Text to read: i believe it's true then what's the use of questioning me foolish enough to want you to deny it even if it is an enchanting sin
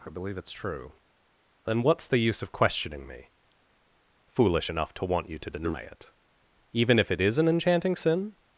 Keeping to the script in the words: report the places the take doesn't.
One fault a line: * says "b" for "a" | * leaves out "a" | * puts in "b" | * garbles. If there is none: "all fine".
all fine